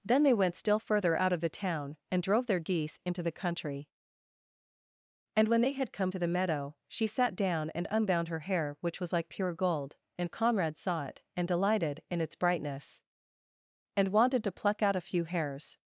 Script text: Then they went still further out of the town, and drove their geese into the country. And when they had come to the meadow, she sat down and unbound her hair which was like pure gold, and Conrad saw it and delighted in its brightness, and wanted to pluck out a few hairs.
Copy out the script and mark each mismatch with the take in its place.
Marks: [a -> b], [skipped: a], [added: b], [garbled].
Then they went still further out of the town, and drove their geese into the country. And when they had come to the meadow, she sat down and unbound her hair which was like pure gold, and Conrad saw it and delighted in its brightness, and wanted to pluck out a few hairs.